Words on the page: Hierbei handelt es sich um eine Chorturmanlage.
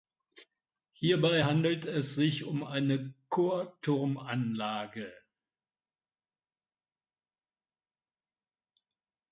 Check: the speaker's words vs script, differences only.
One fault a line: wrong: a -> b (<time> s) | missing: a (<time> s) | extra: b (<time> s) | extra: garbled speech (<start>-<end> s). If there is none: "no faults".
no faults